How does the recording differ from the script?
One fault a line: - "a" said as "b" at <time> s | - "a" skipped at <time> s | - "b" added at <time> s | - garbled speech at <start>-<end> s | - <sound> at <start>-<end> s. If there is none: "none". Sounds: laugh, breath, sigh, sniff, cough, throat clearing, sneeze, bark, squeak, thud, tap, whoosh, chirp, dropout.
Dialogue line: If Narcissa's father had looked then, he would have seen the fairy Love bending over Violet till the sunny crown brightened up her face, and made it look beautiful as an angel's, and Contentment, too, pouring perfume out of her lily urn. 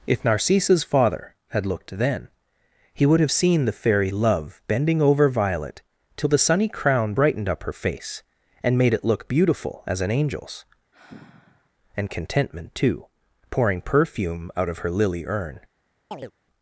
- sigh at 10.9-11.7 s
- chirp at 16.1-16.3 s